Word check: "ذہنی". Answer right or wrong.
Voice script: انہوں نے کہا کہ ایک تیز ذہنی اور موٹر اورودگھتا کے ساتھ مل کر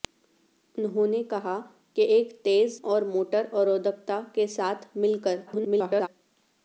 wrong